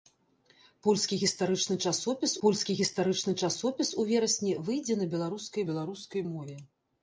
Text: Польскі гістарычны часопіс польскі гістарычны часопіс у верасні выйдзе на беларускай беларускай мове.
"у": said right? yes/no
yes